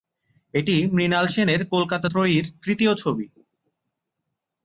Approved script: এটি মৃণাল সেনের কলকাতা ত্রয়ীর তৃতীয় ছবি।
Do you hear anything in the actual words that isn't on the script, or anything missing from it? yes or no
no